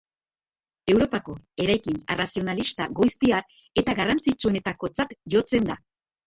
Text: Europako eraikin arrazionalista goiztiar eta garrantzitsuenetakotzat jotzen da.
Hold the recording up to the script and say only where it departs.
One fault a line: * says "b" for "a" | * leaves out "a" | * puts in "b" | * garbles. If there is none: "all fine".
all fine